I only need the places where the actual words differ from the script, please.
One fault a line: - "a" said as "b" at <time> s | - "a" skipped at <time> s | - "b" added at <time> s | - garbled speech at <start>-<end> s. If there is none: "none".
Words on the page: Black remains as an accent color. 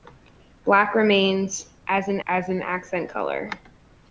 - "as an" added at 2.3 s